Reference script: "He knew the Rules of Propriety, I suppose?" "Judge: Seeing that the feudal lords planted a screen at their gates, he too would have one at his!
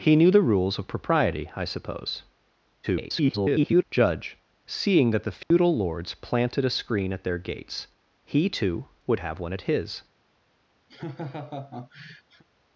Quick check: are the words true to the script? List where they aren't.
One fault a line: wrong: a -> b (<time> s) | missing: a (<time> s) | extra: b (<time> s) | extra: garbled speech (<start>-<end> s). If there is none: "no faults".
extra: garbled speech (2.8-3.8 s)